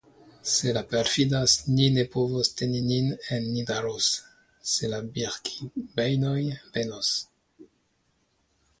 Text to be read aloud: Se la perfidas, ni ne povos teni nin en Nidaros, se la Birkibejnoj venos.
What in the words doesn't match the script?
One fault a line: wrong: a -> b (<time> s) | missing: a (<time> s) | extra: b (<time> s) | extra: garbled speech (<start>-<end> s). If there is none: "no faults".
no faults